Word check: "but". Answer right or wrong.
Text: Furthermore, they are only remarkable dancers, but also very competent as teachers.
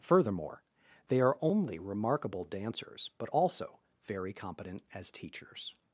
right